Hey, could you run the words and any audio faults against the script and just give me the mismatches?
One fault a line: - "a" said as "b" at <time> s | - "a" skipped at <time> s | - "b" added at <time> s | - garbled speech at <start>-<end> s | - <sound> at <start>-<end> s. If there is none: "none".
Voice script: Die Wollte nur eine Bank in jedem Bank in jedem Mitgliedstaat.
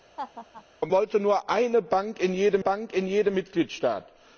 - laugh at 0.2-0.6 s